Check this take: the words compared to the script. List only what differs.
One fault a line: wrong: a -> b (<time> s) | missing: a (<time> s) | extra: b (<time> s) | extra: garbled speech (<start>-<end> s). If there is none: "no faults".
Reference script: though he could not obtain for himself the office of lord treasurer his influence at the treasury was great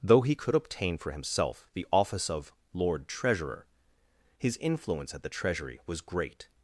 missing: not (0.6 s)